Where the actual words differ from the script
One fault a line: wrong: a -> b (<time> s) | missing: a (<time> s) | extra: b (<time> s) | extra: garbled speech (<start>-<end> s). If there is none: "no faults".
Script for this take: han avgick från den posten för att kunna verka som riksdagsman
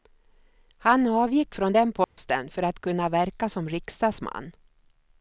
no faults